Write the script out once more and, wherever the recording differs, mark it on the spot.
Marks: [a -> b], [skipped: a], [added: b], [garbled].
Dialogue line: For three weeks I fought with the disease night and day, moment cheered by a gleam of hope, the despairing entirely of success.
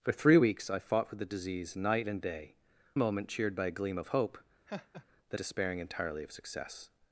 For three weeks I fought with the disease night and day, moment cheered by a gleam of hope, the despairing entirely of success.